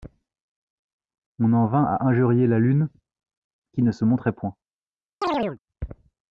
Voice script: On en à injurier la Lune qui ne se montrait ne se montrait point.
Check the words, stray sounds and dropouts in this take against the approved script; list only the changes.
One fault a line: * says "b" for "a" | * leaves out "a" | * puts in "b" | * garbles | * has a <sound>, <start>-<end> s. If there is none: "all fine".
* puts in "vint"
* leaves out "ne se montrait"
* has a chirp, 5.2-5.6 s